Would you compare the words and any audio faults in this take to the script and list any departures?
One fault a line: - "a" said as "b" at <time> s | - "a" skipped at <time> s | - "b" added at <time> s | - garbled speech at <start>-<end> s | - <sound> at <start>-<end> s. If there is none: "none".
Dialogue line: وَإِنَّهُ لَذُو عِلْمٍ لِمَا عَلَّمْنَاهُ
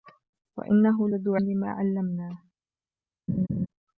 - "عِلْمٍ" skipped at 1.4 s
- laugh at 3.3-3.7 s